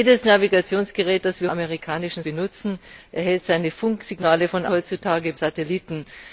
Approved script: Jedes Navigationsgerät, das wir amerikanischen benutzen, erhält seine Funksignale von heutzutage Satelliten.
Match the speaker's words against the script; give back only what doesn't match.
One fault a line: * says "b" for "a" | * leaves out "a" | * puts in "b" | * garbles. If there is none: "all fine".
all fine